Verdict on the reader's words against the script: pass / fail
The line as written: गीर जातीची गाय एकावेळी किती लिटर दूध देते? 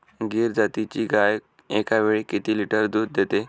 pass